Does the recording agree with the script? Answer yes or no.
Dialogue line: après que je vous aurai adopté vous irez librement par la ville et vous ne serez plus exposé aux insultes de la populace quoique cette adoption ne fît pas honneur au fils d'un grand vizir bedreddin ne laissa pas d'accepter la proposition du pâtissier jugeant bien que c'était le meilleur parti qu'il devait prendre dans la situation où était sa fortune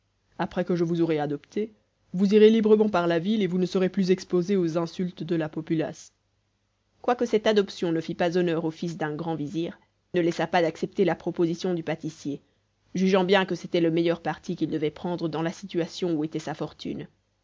no